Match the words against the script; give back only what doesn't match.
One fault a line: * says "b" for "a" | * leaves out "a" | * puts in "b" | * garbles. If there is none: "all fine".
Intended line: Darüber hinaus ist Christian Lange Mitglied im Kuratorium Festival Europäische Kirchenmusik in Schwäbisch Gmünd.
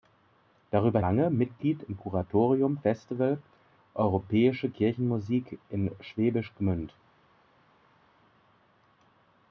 * leaves out "hinaus ist Christian"